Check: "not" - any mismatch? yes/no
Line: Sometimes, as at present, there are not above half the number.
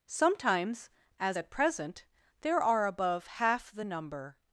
yes